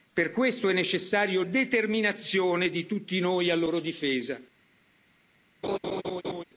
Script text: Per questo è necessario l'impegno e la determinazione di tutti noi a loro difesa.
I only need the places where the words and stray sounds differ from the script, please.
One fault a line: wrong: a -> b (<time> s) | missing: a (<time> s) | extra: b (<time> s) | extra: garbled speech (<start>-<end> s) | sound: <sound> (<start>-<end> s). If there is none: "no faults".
missing: l'impegno e la (1.4 s)
sound: laugh (5.6-6.4 s)